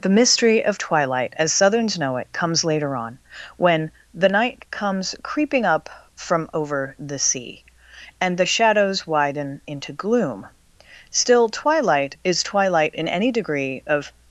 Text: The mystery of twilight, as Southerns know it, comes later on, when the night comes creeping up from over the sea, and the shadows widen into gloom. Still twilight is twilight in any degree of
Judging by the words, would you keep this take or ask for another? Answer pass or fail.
pass